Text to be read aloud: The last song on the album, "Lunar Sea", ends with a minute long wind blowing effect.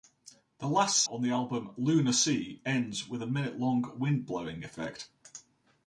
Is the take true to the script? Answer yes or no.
no